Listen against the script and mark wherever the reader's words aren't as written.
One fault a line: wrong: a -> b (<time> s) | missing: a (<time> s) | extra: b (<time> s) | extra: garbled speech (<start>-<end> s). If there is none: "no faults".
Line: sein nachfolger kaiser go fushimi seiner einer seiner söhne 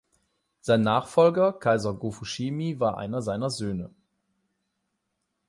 wrong: seiner -> war (2.8 s)